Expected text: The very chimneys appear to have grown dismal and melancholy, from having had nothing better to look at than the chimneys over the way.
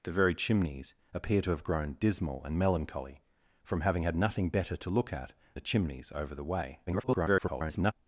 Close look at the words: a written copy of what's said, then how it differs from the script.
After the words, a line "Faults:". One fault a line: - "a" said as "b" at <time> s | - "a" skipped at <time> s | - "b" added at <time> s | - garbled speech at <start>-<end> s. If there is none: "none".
The very chimneys appear to have grown dismal and melancholy, from having had nothing better to look at the chimneys over the way. [garbled]
Faults:
- "than" skipped at 5.3 s
- garbled speech at 6.9-7.9 s